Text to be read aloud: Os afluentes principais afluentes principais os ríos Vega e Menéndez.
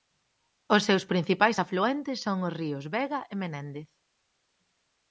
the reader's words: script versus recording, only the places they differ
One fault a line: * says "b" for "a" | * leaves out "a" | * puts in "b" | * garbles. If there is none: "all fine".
* says "seus" for "afluentes"
* says "son" for "principais"